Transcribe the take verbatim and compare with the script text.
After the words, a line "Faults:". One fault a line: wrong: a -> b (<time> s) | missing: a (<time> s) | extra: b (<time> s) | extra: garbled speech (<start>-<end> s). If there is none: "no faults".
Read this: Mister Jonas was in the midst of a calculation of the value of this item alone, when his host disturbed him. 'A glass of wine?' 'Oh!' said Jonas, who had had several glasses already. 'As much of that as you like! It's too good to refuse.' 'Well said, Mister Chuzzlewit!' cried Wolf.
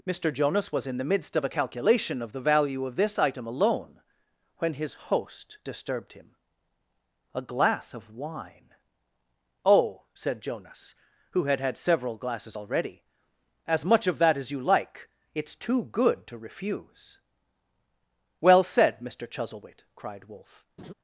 Mister Jonas was in the midst of a calculation of the value of this item alone, when his host disturbed him. 'A glass of wine?' 'Oh!' said Jonas, who had had several glasses already. 'As much of that as you like! It's too good to refuse.' 'Well said, Mister Chuzzlewit!' cried Wolf.
Faults:
no faults